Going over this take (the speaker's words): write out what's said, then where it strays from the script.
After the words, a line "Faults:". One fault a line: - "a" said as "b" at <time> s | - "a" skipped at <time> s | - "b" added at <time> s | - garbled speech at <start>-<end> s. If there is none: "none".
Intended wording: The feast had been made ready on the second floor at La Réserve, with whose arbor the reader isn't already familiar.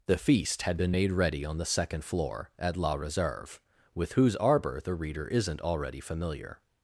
The feast had been made ready on the second floor at La Réserve, with whose arbor the reader isn't already familiar.
Faults:
none